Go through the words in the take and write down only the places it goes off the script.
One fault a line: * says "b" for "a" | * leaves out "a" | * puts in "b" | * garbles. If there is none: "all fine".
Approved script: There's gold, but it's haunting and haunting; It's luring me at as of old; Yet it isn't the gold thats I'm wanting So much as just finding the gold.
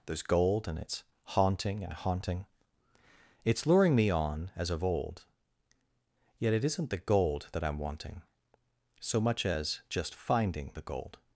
* says "and" for "but"
* says "on" for "at"
* says "that" for "thats"